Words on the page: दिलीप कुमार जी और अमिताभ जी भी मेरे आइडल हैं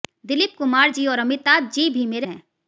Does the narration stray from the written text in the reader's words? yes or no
yes